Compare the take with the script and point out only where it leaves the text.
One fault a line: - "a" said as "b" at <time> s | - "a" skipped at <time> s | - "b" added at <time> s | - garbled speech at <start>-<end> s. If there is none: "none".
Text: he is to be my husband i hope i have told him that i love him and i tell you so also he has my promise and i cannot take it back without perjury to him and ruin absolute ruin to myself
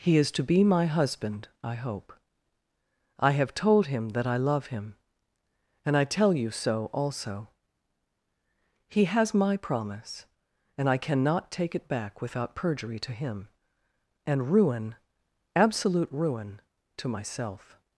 none